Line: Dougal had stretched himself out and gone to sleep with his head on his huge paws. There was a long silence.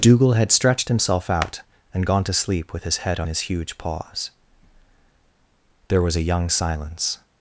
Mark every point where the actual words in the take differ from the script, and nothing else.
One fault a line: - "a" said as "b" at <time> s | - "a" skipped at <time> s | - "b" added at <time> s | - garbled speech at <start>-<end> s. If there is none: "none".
- "long" said as "young" at 6.2 s